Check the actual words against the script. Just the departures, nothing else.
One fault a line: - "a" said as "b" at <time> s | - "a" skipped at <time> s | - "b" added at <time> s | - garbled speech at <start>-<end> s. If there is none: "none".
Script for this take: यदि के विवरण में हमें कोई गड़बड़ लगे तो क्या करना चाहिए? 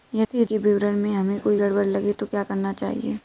none